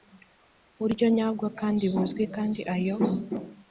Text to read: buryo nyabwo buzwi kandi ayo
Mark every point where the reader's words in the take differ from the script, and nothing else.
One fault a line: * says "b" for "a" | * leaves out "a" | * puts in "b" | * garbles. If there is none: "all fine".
* puts in "kandi"